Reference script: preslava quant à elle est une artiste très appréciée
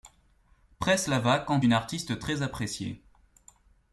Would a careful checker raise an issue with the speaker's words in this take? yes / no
yes